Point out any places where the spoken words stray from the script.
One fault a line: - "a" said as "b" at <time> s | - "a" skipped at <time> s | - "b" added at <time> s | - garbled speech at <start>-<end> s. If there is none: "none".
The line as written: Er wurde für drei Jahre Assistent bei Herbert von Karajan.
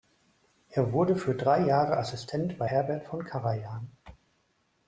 none